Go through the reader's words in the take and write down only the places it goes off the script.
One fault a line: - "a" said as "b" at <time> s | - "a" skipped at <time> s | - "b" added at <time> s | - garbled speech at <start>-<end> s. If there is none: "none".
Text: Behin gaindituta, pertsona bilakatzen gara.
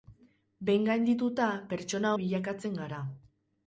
none